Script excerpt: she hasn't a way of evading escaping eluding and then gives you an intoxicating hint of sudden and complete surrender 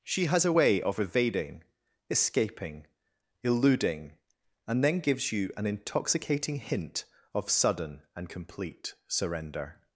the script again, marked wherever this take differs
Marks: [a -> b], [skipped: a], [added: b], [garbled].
she [hasn't -> has] a way of evading escaping eluding and then gives you an intoxicating hint of sudden and complete surrender